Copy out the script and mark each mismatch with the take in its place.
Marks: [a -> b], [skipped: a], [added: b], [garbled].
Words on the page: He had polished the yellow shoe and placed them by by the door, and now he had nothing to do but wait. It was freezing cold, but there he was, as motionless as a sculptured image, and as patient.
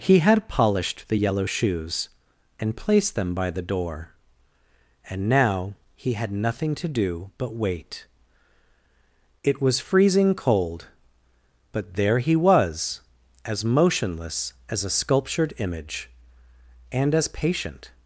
He had polished the yellow [shoe -> shoes] and placed them by [skipped: by] the door, and now he had nothing to do but wait. It was freezing cold, but there he was, as motionless as a sculptured image, and as patient.